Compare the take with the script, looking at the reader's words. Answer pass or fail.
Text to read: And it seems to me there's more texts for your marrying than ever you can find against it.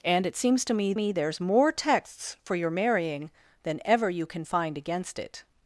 fail